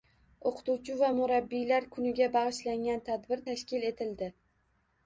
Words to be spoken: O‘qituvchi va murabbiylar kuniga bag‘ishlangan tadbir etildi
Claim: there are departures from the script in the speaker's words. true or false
true